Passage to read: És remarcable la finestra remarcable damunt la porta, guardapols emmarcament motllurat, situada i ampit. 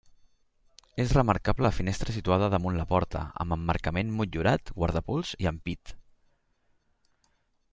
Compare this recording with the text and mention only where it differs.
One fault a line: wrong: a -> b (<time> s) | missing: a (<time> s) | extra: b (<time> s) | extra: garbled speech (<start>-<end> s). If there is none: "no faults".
wrong: remarcable -> situada (2.2 s)
wrong: guardapols -> amb (3.4 s)
wrong: situada -> guardapols (4.8 s)